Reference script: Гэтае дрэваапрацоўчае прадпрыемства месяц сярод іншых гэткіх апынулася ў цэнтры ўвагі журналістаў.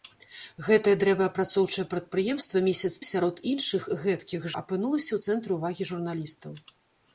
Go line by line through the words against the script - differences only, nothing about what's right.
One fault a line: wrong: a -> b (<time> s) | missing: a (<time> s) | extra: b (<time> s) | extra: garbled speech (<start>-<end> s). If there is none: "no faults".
no faults